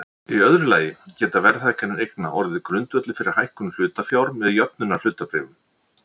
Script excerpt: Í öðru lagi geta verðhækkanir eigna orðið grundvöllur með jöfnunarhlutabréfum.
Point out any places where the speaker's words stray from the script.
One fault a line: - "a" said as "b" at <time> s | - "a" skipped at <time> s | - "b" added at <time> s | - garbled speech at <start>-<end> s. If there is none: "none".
- "fyrir hækkun hlutafjár" added at 3.2 s